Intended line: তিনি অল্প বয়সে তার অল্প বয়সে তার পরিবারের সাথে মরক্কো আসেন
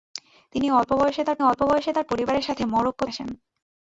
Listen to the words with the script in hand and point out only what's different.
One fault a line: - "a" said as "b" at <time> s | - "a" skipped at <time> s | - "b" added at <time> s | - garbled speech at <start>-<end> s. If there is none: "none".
none